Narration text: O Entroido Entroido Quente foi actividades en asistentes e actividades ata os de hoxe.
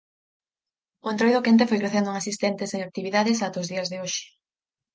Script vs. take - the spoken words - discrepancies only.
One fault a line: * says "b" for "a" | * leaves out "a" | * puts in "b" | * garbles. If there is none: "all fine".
* leaves out "Entroido"
* says "crecendo" for "actividades"
* puts in "días"